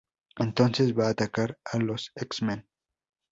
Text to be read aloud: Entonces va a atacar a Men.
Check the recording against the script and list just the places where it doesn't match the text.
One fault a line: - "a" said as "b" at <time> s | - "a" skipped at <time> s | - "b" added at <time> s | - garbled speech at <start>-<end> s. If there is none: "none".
- "los X" added at 1.8 s